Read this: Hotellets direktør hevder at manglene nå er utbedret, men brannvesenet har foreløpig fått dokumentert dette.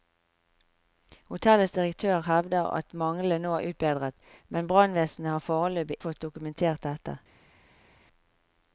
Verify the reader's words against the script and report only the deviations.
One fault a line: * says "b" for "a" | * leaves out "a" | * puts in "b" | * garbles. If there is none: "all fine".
all fine